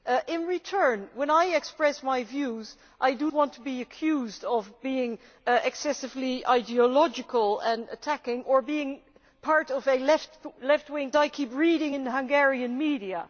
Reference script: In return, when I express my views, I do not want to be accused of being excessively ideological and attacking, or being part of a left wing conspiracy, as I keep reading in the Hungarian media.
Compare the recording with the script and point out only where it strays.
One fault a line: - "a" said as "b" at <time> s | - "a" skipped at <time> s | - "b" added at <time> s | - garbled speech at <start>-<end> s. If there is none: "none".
- "not" skipped at 3.3 s
- "conspiracy as" skipped at 11.1 s